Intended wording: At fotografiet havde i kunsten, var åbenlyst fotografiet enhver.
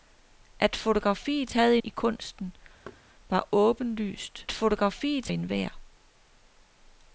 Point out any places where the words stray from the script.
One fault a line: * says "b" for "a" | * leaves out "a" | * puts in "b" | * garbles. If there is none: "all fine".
all fine